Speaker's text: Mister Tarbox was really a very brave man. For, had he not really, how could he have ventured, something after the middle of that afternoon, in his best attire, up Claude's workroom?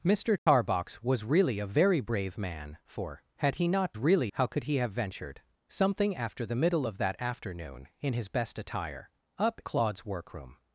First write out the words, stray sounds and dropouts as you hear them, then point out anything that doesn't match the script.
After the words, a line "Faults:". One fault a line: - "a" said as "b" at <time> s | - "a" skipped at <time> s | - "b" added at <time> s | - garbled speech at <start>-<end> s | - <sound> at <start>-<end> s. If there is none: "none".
Mister Tarbox was really a very brave man. For, had he not really, how could he have ventured, something after the middle of that afternoon, in his best attire, up Claude's workroom?
Faults:
- dropout at 0.4-0.5 s